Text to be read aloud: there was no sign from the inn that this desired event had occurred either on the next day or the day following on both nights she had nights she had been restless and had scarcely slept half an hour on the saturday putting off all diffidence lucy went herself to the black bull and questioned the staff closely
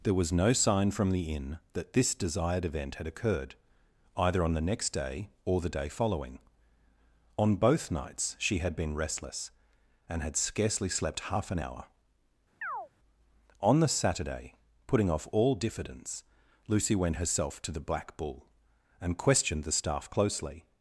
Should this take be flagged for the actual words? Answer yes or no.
yes